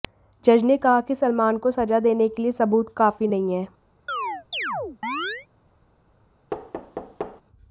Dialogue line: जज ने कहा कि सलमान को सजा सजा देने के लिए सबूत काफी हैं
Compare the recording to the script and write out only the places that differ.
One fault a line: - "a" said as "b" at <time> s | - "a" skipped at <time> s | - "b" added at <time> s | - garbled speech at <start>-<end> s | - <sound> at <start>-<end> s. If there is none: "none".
- "सजा" skipped at 2.0 s
- "नहीं" added at 3.3 s
- chirp at 4.1-5.5 s
- thud at 6.5-7.4 s